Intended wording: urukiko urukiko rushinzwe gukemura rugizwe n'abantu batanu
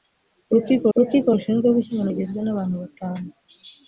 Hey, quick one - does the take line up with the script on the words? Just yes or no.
yes